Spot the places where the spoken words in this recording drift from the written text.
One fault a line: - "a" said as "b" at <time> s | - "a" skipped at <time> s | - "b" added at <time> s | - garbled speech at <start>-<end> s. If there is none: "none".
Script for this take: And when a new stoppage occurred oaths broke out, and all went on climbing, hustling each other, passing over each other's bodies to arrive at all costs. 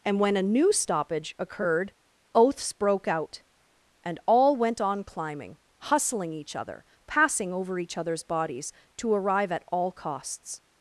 none